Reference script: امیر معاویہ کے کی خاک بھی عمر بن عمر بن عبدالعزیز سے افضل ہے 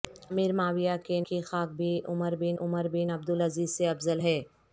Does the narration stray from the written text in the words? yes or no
no